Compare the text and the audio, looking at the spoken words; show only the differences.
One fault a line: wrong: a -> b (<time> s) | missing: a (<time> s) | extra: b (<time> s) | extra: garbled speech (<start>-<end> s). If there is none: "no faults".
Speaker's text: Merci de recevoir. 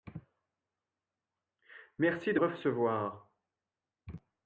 no faults